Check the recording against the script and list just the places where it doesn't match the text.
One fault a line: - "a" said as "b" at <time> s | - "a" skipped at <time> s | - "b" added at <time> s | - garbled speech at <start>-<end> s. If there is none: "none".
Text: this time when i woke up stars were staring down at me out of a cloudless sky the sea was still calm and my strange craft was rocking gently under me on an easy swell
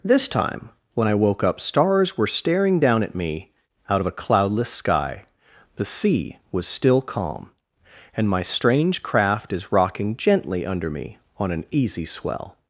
- "was" said as "is" at 9.5 s